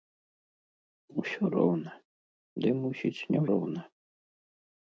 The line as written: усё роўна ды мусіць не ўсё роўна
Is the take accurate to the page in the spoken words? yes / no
no